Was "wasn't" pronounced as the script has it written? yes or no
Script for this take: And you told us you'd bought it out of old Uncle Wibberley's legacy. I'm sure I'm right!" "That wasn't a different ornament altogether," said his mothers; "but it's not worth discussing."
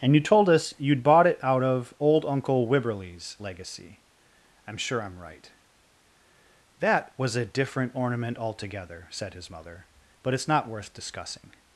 no